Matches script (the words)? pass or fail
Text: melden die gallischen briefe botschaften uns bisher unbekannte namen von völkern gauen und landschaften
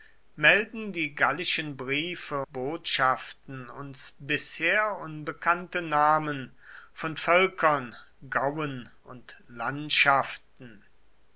pass